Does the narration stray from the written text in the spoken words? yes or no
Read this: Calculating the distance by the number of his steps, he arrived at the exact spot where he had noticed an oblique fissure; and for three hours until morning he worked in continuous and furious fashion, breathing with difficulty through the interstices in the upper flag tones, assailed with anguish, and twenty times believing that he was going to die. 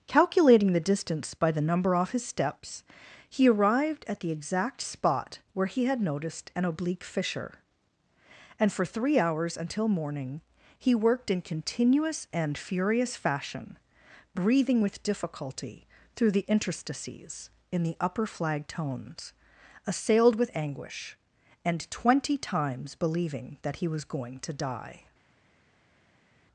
yes